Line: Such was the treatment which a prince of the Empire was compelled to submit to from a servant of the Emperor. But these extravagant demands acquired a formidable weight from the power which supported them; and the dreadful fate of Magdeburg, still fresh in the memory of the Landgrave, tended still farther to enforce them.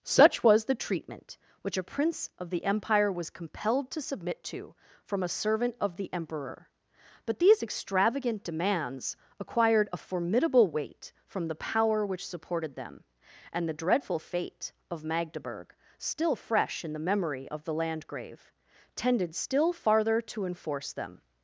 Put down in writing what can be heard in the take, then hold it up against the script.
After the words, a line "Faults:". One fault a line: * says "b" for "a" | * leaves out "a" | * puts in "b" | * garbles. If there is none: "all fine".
Such was the treatment which a prince of the Empire was compelled to submit to from a servant of the Emperor. But these extravagant demands acquired a formidable weight from the power which supported them; and the dreadful fate of Magdeburg, still fresh in the memory of the Landgrave, tended still farther to enforce them.
Faults:
all fine